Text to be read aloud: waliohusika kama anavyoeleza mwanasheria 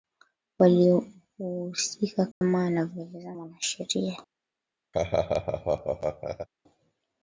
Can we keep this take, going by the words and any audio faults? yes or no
no